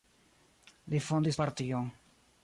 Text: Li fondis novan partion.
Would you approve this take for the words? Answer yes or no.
no